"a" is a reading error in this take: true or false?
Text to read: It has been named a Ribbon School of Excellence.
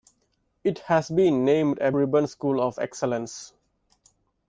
false